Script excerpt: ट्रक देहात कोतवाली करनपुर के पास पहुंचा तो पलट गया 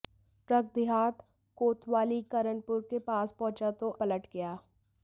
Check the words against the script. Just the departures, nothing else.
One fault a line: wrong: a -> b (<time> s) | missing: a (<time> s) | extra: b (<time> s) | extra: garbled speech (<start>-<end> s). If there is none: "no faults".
no faults